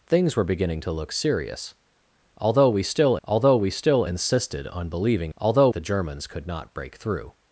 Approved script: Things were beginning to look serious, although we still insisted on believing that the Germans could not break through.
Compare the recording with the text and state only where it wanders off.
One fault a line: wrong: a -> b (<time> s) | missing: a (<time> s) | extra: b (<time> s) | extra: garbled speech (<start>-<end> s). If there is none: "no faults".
extra: although we still (3.2 s)
wrong: that -> although (5.4 s)